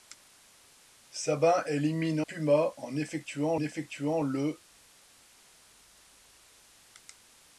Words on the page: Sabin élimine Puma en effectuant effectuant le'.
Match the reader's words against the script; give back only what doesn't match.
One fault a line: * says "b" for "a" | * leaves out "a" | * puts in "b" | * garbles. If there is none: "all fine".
all fine